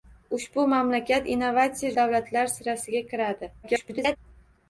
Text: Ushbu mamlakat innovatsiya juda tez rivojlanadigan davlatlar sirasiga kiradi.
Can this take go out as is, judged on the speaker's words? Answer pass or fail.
fail